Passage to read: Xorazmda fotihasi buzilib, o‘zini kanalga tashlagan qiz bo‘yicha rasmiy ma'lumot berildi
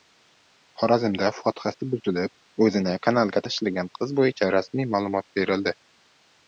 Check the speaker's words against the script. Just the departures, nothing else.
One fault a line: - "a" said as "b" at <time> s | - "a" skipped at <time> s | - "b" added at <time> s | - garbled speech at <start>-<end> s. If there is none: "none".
none